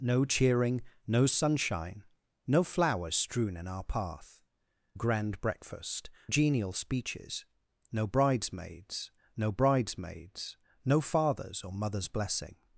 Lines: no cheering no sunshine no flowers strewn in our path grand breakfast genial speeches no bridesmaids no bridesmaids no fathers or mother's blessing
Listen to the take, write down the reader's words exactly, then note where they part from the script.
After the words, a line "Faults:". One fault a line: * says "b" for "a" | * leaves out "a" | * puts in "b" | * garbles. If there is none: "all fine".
no cheering no sunshine no flowers strewn in our path grand breakfast genial speeches no bridesmaids no bridesmaids no fathers or mother's blessing
Faults:
all fine